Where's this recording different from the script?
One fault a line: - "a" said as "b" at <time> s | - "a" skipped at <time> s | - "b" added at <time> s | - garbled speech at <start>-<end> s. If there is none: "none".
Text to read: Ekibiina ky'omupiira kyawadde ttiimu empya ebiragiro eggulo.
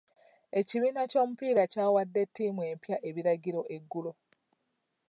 none